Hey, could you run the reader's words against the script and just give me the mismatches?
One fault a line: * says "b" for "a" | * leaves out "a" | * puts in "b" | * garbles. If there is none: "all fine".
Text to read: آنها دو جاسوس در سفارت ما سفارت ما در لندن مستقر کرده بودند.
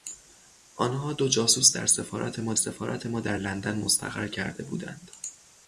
all fine